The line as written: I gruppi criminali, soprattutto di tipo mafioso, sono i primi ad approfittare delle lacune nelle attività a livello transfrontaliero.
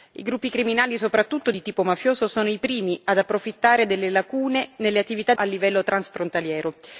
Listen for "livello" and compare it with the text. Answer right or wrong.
right